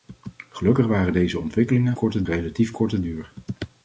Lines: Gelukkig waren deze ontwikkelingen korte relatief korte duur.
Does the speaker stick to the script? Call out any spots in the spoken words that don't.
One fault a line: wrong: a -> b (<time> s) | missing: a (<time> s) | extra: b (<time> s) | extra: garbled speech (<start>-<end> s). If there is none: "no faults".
no faults